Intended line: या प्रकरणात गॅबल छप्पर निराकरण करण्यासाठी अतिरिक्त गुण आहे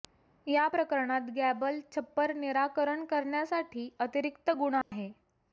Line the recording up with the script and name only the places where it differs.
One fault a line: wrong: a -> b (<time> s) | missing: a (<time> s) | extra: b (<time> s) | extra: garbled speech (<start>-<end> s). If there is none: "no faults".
no faults